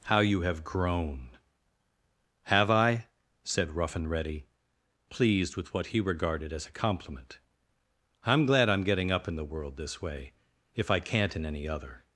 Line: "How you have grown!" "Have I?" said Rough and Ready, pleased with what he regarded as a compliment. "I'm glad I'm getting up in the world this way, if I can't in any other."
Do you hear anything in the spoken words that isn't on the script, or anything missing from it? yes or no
no